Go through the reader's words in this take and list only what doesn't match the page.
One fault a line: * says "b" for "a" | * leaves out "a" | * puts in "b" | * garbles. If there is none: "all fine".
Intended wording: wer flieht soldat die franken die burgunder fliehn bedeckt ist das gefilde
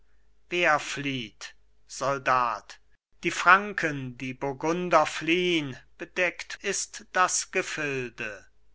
all fine